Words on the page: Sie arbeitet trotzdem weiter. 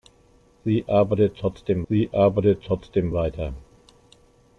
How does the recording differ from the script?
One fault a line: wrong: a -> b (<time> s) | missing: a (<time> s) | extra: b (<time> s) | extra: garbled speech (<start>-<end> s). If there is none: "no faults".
extra: sie arbeitet trotzdem (1.9 s)